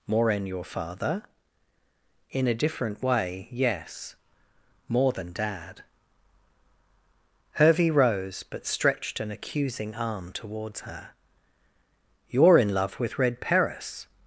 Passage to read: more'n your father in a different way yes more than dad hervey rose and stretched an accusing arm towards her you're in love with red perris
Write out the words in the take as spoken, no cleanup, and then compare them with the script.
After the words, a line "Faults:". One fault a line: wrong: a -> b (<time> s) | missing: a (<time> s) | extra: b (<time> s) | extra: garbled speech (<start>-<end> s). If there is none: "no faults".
more'n your father in a different way yes more than dad hervey rose but stretched an accusing arm towards her you're in love with red perris
Faults:
wrong: and -> but (8.4 s)